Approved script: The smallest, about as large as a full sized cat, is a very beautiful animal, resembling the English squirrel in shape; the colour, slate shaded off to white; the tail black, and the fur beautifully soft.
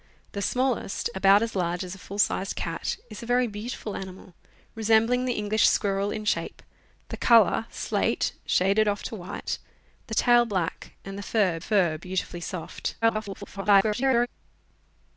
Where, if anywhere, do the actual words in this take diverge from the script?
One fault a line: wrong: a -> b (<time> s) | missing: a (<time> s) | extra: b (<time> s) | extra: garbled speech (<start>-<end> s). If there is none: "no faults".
extra: fur (11.6 s)
extra: garbled speech (13.0-14.3 s)